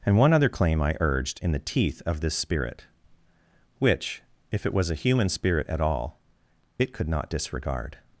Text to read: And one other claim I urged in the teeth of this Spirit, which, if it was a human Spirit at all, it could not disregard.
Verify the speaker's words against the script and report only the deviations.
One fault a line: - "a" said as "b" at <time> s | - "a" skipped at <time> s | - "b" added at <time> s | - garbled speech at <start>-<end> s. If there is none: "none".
none